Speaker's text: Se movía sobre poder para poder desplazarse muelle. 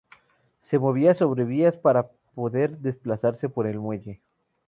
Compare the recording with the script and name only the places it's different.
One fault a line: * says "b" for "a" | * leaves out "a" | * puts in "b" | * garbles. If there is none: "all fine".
* says "vías" for "poder"
* puts in "por el"